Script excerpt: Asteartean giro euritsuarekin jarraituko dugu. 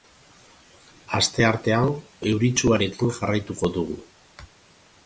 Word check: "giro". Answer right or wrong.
wrong